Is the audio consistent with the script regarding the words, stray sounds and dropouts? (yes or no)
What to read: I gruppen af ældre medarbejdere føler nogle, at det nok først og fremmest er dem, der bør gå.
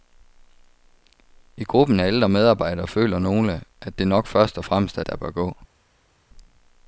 no